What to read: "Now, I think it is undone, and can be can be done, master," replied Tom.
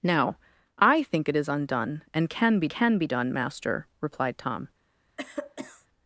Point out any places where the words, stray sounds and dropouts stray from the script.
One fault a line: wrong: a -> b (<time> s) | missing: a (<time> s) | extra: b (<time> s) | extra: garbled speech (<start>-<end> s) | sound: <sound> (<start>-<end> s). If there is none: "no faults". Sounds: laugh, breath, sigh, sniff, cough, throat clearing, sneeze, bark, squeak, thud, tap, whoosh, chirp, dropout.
sound: cough (5.2-5.9 s)